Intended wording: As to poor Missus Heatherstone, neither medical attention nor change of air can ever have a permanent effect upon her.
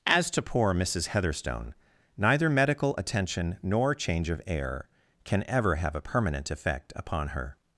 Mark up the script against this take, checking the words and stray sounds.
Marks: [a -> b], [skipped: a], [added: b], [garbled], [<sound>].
As to poor Missus Heatherstone, neither medical attention nor change of air can ever have a permanent effect upon her.